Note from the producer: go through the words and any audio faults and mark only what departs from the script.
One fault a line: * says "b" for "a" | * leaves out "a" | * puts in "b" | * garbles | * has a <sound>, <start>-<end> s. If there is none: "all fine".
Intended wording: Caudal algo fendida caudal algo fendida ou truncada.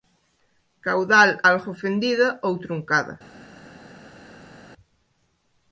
* leaves out "caudal algo fendida"